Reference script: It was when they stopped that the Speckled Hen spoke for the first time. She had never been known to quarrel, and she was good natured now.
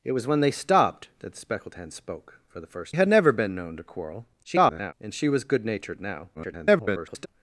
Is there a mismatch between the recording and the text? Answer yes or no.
yes